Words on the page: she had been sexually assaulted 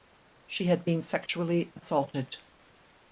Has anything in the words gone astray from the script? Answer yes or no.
no